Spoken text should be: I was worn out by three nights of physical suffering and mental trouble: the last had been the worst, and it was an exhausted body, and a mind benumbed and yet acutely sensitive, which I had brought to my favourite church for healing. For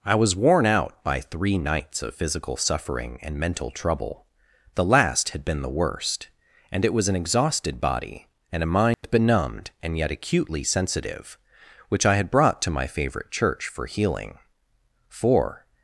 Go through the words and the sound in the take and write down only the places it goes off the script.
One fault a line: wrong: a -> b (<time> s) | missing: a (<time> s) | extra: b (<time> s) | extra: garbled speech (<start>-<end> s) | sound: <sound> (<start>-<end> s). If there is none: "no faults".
sound: dropout (8.9-9.0 s)